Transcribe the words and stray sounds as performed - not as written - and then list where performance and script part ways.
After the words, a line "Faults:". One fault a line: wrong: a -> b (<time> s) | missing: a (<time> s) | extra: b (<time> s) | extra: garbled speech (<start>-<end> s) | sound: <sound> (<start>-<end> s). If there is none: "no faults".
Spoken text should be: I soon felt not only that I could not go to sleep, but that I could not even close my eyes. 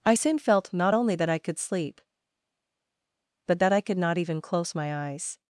I soon felt not only that I could sleep, but that I could not even close my eyes.
Faults:
missing: not go to (1.6 s)